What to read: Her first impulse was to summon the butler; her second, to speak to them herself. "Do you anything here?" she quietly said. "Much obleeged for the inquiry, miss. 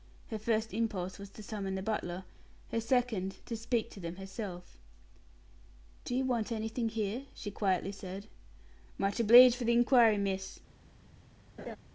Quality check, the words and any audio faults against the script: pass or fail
fail